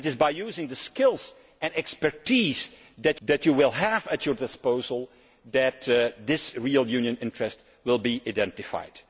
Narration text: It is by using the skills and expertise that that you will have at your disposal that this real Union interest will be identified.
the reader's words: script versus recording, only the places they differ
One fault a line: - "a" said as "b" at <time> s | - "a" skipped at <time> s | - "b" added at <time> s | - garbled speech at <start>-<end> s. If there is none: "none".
none